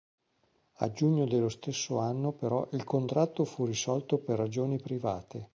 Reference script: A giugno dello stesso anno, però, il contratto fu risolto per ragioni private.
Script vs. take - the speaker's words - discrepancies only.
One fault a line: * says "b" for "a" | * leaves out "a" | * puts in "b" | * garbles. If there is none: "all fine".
all fine